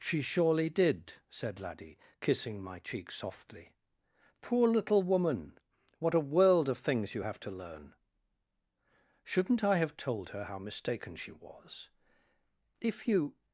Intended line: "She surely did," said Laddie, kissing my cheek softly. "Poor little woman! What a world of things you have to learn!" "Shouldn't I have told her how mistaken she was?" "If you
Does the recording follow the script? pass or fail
pass